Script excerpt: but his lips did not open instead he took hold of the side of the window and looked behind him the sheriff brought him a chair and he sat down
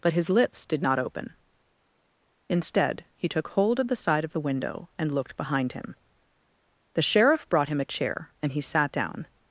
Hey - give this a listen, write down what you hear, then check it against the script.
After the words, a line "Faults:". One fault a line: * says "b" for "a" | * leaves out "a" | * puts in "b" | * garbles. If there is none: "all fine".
but his lips did not open instead he took hold of the side of the window and looked behind him the sheriff brought him a chair and he sat down
Faults:
all fine